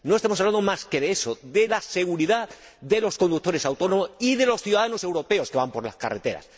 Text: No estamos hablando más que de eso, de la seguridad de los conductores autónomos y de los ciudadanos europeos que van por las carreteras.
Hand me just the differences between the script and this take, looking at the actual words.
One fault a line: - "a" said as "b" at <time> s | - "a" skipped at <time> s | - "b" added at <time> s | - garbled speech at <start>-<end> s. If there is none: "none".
none